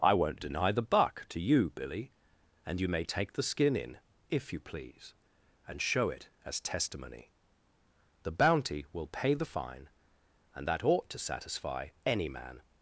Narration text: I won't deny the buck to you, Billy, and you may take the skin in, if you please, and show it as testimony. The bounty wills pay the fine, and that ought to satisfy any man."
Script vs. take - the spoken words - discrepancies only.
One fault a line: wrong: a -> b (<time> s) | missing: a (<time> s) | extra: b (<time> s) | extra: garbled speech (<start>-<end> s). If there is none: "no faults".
wrong: wills -> will (8.9 s)